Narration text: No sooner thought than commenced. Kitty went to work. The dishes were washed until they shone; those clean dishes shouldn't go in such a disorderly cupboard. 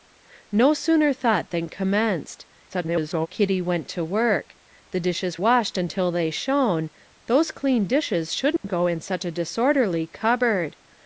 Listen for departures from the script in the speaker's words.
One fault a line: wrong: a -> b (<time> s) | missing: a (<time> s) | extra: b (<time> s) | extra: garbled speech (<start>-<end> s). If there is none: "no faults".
extra: garbled speech (2.7-3.3 s)
missing: were (5.4 s)